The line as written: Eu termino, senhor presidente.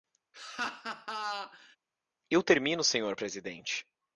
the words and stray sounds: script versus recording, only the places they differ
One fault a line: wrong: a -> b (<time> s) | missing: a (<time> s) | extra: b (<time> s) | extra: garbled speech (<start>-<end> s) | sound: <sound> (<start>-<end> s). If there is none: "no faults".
sound: laugh (0.3-1.8 s)